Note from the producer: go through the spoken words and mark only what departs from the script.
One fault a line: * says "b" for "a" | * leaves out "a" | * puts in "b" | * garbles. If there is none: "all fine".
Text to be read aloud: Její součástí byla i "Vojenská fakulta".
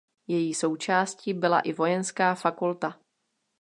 all fine